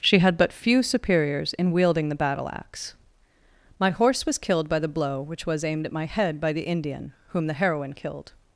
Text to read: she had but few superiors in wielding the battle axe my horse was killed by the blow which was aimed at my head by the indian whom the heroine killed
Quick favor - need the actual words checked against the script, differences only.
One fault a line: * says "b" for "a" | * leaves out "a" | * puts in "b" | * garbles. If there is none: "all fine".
all fine